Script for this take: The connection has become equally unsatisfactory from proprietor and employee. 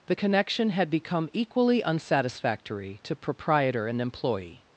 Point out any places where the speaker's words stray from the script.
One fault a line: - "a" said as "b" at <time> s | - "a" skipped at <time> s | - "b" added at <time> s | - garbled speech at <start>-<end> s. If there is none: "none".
- "has" said as "had" at 0.7 s
- "from" said as "to" at 3.0 s